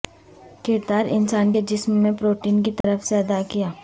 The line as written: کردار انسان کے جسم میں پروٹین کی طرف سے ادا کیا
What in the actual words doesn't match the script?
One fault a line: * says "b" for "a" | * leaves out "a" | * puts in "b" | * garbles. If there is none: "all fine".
all fine